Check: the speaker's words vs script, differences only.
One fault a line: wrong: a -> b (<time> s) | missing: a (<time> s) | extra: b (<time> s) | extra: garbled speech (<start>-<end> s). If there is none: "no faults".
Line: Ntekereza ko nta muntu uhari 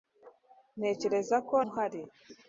missing: nta muntu (1.6 s)